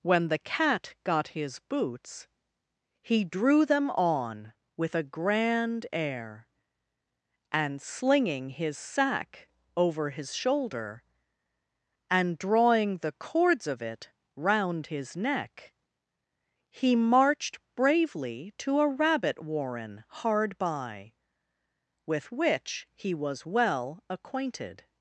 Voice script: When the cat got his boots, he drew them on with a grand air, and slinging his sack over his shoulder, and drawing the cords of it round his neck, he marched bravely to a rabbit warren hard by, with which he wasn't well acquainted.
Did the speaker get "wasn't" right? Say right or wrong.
wrong